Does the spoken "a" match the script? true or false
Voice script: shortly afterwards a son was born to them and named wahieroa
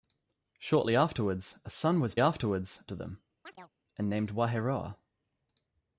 true